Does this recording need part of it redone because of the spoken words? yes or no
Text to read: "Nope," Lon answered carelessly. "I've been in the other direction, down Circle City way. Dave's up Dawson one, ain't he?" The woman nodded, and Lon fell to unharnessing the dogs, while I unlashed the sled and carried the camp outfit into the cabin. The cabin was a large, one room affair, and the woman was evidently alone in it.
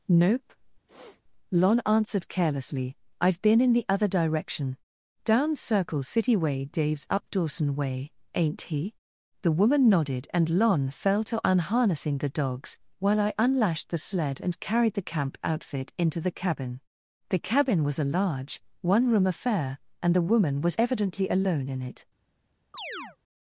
yes